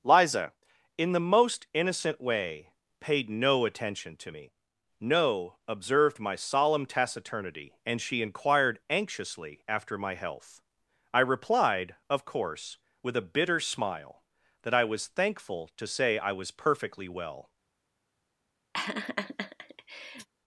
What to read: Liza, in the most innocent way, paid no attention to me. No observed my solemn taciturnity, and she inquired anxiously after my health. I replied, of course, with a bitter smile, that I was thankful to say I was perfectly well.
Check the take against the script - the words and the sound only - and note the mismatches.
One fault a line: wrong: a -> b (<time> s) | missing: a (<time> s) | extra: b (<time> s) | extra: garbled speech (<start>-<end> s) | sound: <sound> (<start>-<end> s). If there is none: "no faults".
sound: laugh (18.7-20.3 s)